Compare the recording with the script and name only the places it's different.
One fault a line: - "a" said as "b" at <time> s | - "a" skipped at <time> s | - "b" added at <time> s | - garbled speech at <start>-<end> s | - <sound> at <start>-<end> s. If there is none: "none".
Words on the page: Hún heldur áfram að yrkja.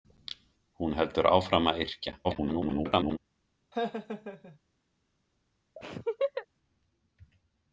- garbled speech at 2.2-3.2 s
- laugh at 3.7-4.6 s
- laugh at 5.8-6.5 s